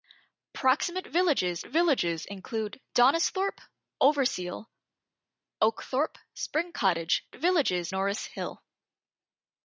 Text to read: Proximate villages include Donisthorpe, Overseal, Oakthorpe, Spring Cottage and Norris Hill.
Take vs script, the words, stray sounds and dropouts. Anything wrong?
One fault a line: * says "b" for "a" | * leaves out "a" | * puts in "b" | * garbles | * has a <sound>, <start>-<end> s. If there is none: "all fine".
* puts in "villages"
* says "villages" for "and"